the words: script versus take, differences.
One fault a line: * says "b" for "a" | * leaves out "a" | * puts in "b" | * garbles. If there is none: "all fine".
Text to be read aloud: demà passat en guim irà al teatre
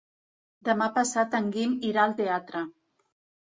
all fine